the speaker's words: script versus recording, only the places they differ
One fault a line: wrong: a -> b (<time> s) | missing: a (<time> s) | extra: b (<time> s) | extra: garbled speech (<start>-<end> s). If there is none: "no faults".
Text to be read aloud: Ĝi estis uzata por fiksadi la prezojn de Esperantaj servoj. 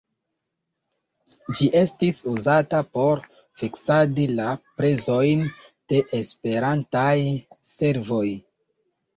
no faults